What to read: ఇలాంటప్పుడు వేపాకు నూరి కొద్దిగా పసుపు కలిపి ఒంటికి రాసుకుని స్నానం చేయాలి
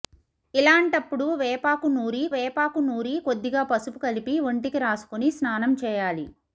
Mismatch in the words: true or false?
true